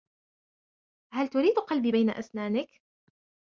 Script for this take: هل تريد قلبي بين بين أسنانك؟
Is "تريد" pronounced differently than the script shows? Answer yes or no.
no